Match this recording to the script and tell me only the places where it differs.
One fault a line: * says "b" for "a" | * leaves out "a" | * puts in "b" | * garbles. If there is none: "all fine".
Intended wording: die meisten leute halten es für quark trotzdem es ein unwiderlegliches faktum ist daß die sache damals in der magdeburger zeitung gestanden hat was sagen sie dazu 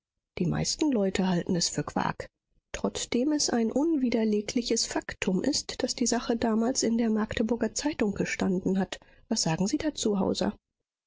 all fine